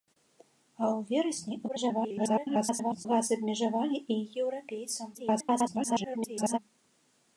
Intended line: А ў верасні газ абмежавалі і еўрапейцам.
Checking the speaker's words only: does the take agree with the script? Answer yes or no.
no